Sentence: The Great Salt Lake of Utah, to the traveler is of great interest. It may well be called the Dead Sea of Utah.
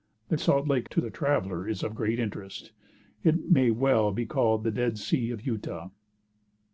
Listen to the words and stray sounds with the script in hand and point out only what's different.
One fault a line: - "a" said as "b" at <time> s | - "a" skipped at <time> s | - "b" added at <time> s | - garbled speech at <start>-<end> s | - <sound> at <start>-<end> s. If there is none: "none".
- "Great" skipped at 0.3 s
- "of Utah" skipped at 0.9 s